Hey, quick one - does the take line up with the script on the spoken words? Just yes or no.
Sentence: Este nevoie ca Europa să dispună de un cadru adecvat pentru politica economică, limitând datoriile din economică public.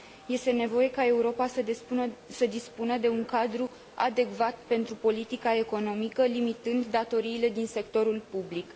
no